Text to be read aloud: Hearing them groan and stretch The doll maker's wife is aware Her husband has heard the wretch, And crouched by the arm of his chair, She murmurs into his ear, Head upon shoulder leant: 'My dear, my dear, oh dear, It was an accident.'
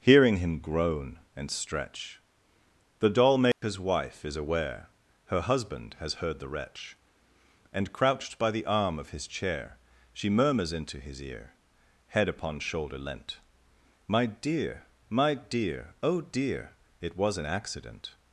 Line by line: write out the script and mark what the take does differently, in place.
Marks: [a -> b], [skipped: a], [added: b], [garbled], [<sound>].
Hearing [them -> him] groan and stretch The doll maker's [dropout] wife is aware Her husband has heard the wretch, And crouched by the arm of his chair, She murmurs into his ear, Head upon shoulder leant: 'My dear, my dear, oh dear, It was an accident.'